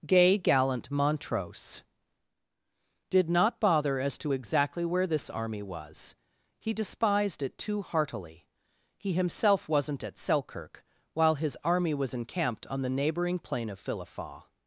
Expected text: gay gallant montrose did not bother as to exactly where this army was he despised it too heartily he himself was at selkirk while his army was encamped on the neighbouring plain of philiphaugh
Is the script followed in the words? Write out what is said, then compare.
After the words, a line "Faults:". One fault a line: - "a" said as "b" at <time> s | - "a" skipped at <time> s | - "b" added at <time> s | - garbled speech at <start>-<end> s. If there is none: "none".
gay gallant montrose did not bother as to exactly where this army was he despised it too heartily he himself wasn't at selkirk while his army was encamped on the neighbouring plain of philiphaugh
Faults:
- "was" said as "wasn't" at 9.7 s